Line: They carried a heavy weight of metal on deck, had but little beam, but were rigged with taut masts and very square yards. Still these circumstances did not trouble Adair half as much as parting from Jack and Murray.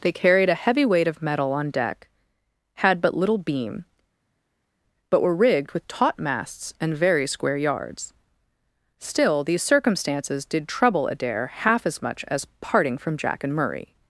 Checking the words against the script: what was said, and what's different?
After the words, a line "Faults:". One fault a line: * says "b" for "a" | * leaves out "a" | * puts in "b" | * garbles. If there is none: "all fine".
They carried a heavy weight of metal on deck, had but little beam, but were rigged with taut masts and very square yards. Still these circumstances did trouble Adair half as much as parting from Jack and Murray.
Faults:
* leaves out "not"